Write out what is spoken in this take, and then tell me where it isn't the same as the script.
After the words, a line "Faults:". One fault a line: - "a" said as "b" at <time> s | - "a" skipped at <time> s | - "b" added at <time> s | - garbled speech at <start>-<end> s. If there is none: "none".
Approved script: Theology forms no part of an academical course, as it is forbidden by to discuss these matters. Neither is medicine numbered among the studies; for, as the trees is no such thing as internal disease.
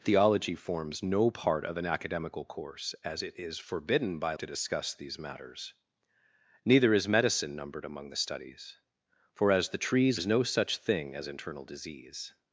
Theology forms no part of an academical course, as it is forbidden by to discuss these matters. Neither is medicine numbered among the studies; for, as the trees is no such thing as internal disease.
Faults:
none